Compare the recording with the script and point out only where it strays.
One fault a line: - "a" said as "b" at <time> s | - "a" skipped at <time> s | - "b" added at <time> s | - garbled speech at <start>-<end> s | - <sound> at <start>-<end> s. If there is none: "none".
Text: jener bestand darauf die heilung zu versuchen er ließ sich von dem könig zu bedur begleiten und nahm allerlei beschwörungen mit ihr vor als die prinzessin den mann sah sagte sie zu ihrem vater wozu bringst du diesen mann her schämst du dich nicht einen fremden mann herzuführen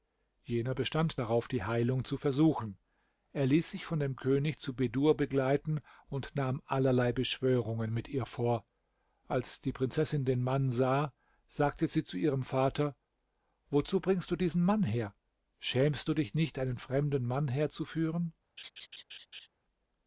- laugh at 18.6-19.5 s